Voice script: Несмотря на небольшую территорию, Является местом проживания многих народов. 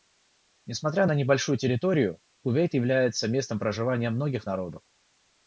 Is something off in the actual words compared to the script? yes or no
yes